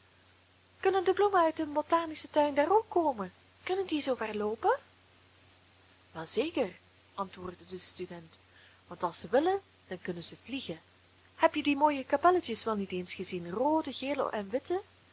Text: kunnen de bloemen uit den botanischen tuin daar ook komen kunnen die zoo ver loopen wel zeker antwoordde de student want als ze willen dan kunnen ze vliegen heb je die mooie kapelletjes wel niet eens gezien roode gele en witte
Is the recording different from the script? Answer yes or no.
no